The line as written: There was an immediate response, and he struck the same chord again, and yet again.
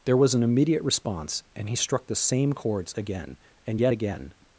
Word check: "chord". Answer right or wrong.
wrong